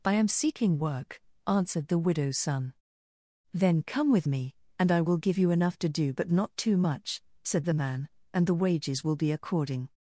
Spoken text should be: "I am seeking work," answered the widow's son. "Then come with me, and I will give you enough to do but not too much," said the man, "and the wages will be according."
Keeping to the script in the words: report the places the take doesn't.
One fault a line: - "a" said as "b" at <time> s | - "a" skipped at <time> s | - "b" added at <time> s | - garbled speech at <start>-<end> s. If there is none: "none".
none